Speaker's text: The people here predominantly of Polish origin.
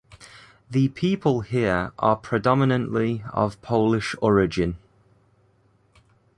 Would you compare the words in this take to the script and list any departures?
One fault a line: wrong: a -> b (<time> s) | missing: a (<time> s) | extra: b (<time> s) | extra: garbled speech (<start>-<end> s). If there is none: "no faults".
extra: are (2.0 s)